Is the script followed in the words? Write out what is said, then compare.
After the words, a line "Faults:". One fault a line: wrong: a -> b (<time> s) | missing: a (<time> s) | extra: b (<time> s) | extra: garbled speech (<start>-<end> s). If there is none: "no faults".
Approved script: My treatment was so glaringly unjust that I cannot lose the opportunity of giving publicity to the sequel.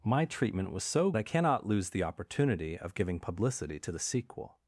My treatment was so I cannot lose the opportunity of giving publicity to the sequel.
Faults:
missing: glaringly unjust that (1.1 s)